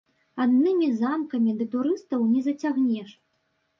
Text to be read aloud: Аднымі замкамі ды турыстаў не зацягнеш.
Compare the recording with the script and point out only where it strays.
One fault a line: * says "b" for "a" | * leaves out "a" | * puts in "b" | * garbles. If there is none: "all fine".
all fine